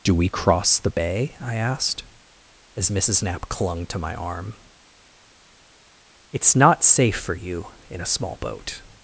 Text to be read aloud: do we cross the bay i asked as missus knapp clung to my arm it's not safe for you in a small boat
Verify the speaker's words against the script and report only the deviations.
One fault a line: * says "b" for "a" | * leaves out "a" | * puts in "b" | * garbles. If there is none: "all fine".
all fine